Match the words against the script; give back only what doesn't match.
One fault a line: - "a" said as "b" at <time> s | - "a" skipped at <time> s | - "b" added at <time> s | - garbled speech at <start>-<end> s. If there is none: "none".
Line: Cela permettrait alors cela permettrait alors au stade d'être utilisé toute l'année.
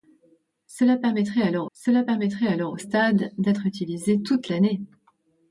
none